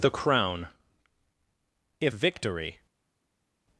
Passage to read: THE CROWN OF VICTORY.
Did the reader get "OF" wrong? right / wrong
wrong